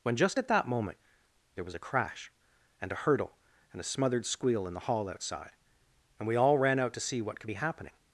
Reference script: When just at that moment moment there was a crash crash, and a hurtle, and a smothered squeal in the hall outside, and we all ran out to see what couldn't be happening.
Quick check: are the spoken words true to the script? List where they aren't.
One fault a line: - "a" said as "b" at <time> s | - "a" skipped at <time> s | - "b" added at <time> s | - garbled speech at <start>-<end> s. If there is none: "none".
- "moment" skipped at 1.0 s
- "crash" skipped at 2.3 s
- "couldn't" said as "could" at 7.4 s